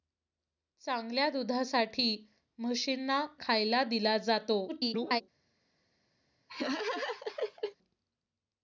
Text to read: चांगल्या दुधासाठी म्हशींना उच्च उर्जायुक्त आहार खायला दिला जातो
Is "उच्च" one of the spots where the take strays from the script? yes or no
yes